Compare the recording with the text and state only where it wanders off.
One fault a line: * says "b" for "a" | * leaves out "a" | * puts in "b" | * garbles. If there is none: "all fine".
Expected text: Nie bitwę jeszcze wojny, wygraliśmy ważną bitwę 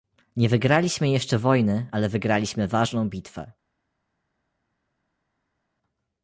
* says "wygraliśmy" for "bitwę"
* puts in "ale"